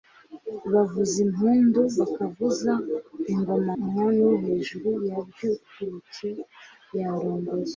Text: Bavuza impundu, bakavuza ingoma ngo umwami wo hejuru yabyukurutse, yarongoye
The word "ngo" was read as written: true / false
false